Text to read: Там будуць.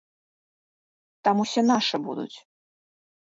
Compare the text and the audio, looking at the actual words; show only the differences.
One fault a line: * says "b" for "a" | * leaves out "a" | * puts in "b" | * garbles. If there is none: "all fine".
* puts in "усе нашы"